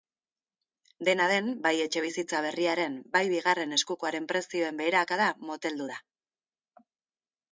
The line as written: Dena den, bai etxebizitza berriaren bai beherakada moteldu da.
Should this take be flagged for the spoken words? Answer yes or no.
yes